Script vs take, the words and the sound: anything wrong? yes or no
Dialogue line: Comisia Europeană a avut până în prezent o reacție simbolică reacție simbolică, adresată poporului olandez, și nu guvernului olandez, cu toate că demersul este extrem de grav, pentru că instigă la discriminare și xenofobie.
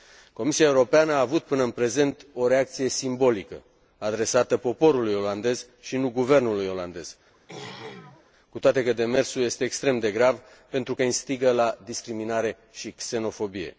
yes